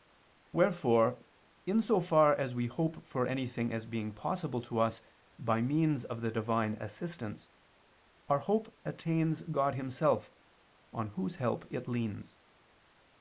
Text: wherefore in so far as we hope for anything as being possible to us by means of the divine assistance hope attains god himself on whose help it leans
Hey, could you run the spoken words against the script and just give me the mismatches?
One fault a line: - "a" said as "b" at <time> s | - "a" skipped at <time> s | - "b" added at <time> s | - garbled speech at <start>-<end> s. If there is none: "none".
- "our" added at 8.3 s